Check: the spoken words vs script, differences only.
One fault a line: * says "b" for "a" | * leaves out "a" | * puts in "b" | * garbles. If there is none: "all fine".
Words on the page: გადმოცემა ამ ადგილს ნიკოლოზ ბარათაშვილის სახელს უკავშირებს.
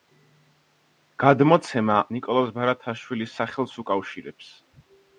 * leaves out "ამ ადგილს"